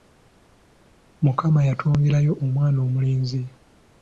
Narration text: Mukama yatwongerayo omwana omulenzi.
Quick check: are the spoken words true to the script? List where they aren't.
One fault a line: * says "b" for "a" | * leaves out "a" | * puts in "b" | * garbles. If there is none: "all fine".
all fine